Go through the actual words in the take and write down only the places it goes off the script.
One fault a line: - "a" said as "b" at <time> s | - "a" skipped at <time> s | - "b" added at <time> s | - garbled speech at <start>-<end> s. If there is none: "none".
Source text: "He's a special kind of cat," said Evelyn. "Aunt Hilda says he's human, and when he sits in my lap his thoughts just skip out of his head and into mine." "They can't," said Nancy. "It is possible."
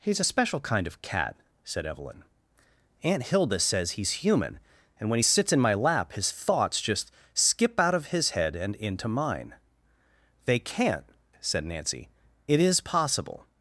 none